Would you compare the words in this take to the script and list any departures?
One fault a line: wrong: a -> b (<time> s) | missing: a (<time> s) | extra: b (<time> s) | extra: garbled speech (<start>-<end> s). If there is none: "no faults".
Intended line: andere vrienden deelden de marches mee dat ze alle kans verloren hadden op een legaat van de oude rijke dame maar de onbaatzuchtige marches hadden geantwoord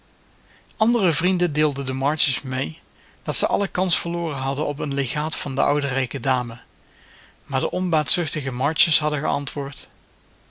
no faults